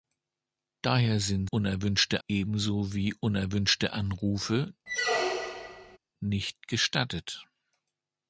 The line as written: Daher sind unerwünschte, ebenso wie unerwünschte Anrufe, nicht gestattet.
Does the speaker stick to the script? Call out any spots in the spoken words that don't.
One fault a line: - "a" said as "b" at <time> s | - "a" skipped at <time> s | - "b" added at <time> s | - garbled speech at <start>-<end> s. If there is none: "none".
none